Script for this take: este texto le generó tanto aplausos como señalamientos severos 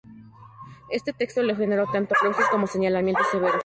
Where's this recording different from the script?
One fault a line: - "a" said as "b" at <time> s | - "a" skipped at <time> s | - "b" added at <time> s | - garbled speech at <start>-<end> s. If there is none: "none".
none